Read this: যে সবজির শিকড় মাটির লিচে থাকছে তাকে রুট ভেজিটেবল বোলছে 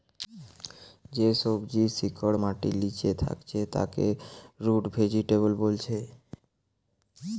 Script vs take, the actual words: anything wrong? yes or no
no